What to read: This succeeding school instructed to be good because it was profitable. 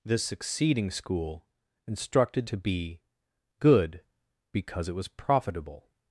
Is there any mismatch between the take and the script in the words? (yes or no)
no